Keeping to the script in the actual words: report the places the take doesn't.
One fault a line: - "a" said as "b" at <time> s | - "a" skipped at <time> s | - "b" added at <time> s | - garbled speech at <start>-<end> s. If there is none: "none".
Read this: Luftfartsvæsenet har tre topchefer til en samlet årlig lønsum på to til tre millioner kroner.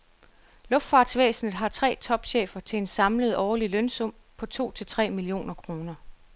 none